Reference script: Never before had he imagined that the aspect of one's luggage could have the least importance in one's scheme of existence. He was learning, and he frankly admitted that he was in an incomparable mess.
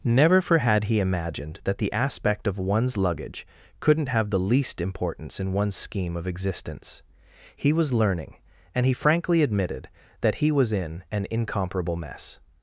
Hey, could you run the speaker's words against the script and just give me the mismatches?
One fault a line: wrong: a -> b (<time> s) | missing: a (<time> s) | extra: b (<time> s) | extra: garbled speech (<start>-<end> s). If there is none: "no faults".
wrong: before -> for (0.4 s)
wrong: could -> couldn't (3.8 s)